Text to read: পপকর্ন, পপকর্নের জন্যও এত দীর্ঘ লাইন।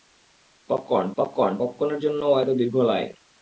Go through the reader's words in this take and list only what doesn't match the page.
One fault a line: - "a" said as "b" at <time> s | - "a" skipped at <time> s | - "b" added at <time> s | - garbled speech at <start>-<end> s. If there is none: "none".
- "পপকর্ন" added at 1.2 s